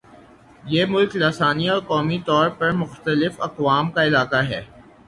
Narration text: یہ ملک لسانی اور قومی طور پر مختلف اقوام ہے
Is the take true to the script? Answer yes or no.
no